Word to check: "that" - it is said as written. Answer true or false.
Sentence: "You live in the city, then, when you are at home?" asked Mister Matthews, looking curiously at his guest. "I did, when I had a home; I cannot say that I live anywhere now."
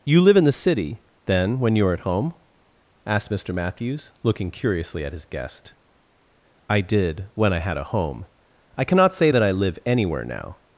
true